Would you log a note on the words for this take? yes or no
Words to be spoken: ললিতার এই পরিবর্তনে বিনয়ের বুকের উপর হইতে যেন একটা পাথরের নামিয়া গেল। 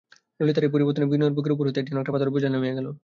yes